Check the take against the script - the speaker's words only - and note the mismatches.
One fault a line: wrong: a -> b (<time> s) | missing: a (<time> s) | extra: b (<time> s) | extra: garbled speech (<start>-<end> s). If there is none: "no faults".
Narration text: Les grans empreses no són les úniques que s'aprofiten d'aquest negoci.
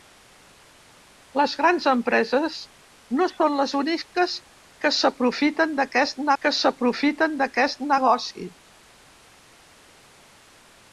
extra: que s'aprofiten d'aquest (6.4 s)